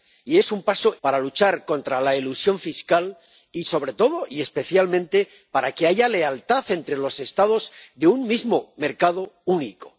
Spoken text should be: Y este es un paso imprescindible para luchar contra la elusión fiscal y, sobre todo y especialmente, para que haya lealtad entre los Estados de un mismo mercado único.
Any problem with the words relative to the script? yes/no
yes